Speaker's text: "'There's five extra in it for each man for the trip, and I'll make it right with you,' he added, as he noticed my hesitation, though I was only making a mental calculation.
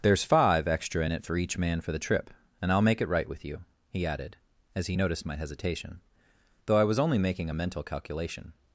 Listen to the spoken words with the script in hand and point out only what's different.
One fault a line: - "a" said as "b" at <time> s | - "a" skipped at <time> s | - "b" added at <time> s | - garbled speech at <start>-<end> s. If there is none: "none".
none